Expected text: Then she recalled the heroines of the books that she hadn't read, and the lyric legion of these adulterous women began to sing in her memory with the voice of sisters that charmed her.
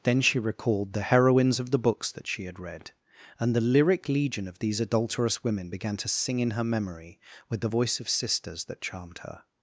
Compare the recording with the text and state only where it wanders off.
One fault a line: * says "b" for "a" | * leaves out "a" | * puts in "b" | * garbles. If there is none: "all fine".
* says "had" for "hadn't"